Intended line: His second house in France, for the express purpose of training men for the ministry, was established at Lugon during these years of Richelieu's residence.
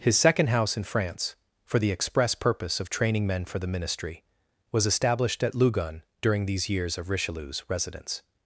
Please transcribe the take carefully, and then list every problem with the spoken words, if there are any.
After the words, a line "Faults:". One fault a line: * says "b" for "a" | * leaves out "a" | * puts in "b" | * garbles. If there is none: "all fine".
His second house in France, for the express purpose of training men for the ministry, was established at Lugon during these years of Richelieu's residence.
Faults:
all fine